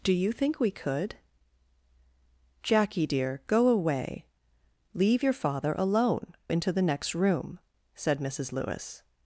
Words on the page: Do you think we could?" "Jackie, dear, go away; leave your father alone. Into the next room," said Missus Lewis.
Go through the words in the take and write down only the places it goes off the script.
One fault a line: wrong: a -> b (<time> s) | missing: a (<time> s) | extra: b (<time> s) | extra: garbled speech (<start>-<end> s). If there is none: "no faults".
no faults